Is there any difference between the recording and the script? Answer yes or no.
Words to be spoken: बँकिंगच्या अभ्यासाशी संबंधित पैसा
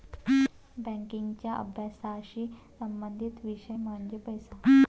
yes